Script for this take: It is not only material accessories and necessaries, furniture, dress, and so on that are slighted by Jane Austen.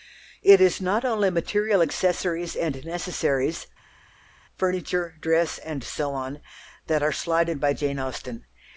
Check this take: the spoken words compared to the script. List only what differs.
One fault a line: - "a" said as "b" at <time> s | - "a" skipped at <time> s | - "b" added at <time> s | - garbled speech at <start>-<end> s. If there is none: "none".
none